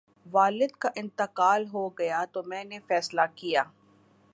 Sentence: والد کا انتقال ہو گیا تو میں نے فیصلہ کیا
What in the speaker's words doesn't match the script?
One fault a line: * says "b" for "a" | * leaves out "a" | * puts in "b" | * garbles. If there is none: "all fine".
all fine